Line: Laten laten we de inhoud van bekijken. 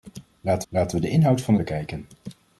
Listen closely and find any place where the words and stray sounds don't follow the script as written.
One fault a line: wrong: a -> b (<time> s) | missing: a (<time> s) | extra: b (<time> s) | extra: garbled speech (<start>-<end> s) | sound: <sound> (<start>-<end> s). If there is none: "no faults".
no faults